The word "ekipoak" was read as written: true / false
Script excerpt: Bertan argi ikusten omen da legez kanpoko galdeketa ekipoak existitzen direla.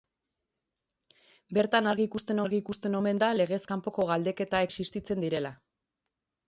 false